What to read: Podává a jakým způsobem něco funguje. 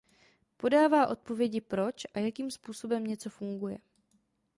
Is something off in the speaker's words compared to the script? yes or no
yes